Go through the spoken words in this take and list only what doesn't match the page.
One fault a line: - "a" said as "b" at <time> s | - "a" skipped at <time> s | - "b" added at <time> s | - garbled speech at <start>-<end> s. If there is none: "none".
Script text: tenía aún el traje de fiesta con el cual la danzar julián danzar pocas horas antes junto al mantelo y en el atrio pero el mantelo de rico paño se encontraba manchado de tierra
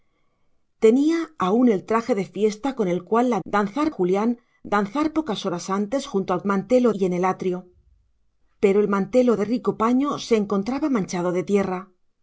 none